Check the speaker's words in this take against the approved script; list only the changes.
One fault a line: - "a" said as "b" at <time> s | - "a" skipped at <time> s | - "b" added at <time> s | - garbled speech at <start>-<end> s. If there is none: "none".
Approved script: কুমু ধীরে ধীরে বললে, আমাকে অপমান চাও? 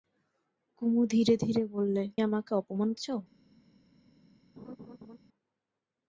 none